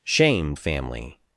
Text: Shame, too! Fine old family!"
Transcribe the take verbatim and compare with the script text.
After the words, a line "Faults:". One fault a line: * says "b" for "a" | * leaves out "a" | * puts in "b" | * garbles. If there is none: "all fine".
Shame, family!"
Faults:
* leaves out "too Fine old"